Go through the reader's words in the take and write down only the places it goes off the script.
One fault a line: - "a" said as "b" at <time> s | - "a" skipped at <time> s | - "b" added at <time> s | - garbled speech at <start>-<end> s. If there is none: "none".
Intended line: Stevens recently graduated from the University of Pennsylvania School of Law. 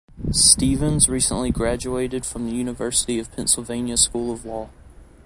none